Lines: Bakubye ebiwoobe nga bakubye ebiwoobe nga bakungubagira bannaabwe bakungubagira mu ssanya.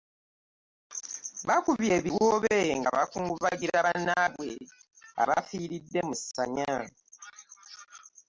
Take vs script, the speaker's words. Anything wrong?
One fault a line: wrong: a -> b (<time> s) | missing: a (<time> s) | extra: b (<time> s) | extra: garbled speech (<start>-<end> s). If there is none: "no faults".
missing: bakubye ebiwoobe nga (2.9 s)
wrong: bakungubagira -> abafiiridde (5.2 s)